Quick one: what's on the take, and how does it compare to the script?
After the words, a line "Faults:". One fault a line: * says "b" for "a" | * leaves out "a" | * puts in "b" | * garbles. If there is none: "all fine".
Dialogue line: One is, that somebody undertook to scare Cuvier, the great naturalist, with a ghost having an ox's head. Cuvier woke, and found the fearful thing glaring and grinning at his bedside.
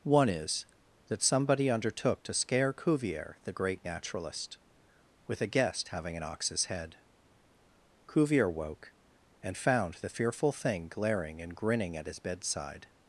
One is, that somebody undertook to scare Cuvier, the great naturalist, with a guest having an ox's head. Cuvier woke, and found the fearful thing glaring and grinning at his bedside.
Faults:
* says "guest" for "ghost"